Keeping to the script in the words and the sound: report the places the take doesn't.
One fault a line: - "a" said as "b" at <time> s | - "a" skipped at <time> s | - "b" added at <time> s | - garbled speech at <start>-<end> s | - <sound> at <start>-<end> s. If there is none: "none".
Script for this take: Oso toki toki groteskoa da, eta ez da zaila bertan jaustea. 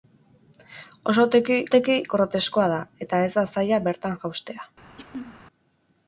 - throat clearing at 5.0-5.4 s